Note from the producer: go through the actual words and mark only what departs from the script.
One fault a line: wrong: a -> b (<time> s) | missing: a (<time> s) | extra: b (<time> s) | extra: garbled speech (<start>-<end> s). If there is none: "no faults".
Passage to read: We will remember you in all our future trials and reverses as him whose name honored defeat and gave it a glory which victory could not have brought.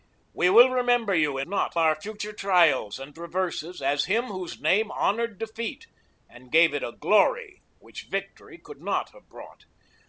wrong: all -> not (1.5 s)